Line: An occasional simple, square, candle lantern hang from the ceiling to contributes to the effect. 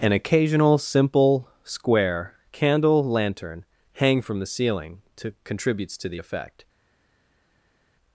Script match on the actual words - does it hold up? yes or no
yes